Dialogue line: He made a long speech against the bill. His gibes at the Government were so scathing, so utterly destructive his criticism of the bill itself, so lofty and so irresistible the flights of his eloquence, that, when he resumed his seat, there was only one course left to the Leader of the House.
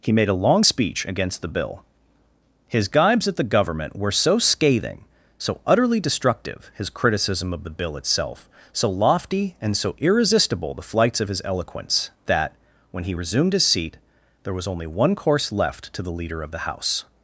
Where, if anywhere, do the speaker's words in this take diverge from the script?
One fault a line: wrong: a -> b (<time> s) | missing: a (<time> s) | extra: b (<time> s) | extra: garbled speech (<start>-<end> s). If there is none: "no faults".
no faults